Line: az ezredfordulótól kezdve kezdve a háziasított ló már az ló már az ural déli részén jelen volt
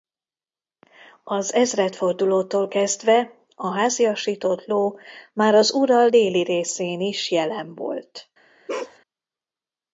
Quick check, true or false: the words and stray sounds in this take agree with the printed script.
false